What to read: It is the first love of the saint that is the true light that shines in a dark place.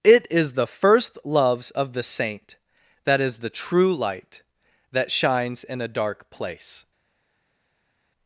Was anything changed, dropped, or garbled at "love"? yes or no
yes